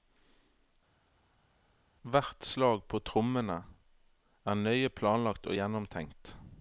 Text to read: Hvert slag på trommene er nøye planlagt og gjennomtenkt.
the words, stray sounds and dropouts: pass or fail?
pass